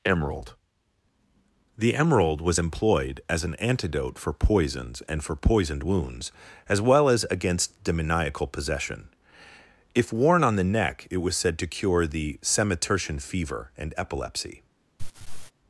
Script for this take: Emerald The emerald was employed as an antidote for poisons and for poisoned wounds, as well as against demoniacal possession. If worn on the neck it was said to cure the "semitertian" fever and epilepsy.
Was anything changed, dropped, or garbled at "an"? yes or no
no